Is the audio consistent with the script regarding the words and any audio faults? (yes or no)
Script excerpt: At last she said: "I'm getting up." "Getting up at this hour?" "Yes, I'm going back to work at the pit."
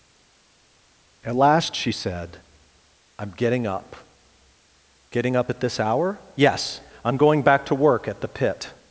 yes